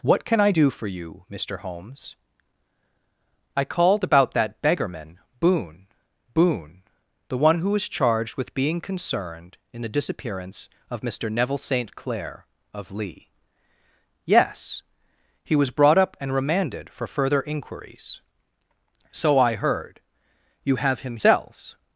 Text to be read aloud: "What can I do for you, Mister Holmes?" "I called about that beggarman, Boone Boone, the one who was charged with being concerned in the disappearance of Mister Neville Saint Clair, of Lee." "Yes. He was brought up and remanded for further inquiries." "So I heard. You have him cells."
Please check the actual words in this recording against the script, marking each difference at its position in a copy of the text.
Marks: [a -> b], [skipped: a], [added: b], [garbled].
"What can I do for you, Mister Holmes?" "I called about that beggarman, Boone Boone, the one who was charged with being concerned in the disappearance of Mister Neville Saint Clair, of Lee." "Yes. He was brought up and remanded for further inquiries." "So I heard. You have him cells."